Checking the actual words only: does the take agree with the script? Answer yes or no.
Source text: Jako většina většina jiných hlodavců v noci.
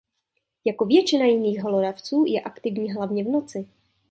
no